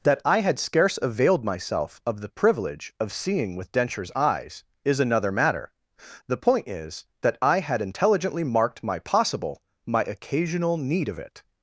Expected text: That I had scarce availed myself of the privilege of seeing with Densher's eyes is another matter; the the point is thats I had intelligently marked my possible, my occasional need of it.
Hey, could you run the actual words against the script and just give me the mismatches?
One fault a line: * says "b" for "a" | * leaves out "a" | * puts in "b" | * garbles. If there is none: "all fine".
* leaves out "the"
* says "that" for "thats"